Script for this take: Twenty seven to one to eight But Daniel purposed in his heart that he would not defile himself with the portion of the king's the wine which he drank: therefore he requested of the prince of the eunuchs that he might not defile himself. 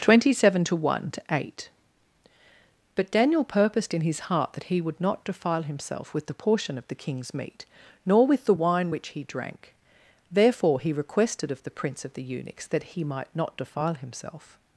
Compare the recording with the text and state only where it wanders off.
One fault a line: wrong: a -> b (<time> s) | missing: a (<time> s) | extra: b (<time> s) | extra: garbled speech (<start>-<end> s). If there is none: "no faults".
extra: meat nor with (7.3 s)